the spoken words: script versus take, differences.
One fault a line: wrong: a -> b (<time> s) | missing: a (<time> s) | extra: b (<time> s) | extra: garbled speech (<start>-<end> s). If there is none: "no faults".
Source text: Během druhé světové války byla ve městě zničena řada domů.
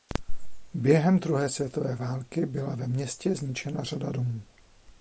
no faults